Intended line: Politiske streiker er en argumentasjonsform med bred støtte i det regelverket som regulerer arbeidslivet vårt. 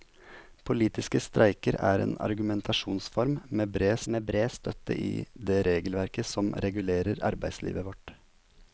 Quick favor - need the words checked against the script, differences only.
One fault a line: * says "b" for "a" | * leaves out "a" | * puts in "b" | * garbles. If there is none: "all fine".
* puts in "med bred"